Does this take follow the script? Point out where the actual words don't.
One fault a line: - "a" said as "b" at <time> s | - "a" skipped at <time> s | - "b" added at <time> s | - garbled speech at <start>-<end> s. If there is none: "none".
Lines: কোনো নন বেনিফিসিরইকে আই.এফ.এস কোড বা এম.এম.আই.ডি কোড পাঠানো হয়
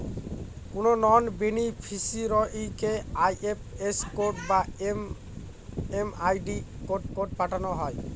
- "কোড" added at 7.2 s